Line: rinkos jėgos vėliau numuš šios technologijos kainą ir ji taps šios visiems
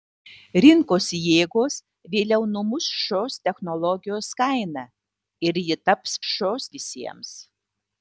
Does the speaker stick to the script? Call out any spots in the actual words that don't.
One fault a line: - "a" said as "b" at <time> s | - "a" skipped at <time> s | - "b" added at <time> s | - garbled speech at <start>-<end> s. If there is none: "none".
none